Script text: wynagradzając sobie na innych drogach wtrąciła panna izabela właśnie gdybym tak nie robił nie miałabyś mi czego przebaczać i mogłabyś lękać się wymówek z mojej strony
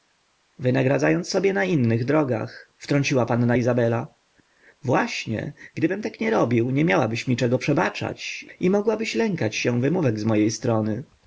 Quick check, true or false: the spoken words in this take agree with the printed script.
true